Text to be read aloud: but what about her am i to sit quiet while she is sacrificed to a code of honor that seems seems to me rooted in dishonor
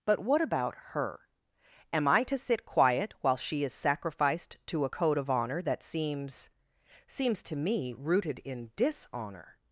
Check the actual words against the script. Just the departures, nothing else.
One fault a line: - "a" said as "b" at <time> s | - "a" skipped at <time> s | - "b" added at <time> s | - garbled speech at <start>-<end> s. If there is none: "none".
none